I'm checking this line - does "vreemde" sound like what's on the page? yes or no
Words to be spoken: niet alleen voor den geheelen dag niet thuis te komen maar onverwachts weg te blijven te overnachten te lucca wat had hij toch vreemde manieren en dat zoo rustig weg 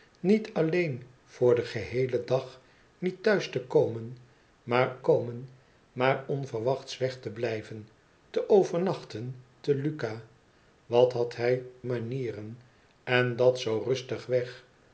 no